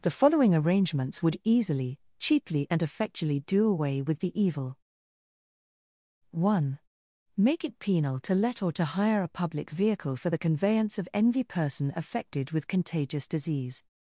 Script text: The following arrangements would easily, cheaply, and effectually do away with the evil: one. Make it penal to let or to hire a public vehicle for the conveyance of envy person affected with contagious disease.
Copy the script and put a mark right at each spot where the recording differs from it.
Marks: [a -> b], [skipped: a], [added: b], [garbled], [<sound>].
The following arrangements would easily, cheaply, and effectually do away with the evil: one. Make it penal to let or to hire a public vehicle for the conveyance of envy person affected with contagious disease.